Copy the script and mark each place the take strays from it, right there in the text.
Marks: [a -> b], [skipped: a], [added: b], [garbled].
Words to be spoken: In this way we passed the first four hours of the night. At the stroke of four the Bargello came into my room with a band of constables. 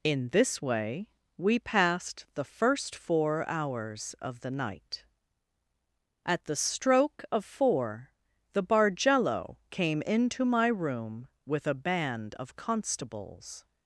In this way we passed the first four hours of the night. At the stroke of four the Bargello came into my room with a band of constables.